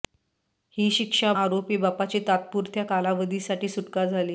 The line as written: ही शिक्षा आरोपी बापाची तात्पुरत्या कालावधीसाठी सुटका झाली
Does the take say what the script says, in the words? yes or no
yes